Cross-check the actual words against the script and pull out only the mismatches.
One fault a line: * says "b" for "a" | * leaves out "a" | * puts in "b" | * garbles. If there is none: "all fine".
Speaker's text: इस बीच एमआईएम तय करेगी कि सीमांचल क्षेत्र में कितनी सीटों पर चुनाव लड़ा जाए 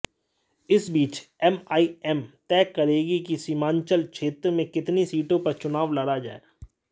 all fine